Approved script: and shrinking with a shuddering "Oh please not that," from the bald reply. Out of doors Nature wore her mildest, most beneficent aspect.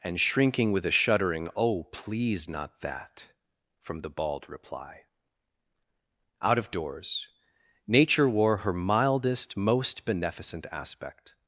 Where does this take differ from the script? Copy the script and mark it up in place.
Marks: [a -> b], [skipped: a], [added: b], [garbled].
and shrinking with a shuddering "Oh please not that," from the bald reply. Out of doors Nature wore her mildest, most beneficent aspect.